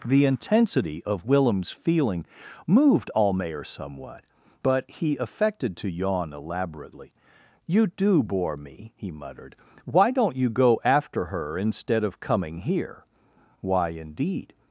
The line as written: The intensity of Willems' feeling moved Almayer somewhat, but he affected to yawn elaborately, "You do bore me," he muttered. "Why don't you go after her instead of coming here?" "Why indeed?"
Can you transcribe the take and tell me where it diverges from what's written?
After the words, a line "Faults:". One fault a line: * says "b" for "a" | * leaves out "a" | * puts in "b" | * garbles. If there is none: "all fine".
The intensity of Willems' feeling moved Almayer somewhat, but he affected to yawn elaborately, "You do bore me," he muttered. "Why don't you go after her instead of coming here?" "Why indeed?"
Faults:
all fine